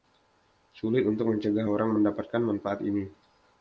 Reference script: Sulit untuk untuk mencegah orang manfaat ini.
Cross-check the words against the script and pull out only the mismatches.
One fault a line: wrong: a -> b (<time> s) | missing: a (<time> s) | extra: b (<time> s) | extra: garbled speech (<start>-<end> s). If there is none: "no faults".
missing: untuk (1.3 s)
extra: mendapatkan (2.0 s)